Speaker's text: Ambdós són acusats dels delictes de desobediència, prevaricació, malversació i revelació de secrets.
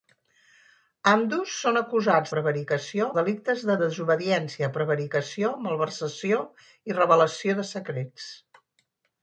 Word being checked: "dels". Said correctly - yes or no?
no